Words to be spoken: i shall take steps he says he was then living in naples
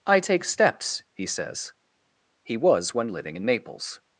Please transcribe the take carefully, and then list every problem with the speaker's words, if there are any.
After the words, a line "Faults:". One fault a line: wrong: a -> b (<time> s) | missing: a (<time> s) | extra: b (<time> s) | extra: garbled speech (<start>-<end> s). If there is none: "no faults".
i take steps he says he was when living in naples
Faults:
missing: shall (0.2 s)
wrong: then -> when (2.9 s)